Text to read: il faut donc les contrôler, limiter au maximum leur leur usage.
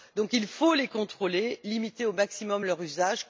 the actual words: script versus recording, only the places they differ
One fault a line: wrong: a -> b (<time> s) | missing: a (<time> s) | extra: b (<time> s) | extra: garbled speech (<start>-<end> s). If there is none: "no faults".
missing: leur (2.8 s)